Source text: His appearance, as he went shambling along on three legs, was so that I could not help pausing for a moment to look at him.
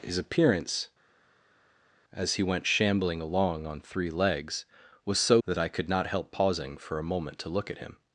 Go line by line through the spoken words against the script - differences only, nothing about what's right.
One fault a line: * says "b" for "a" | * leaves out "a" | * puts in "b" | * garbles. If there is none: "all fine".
all fine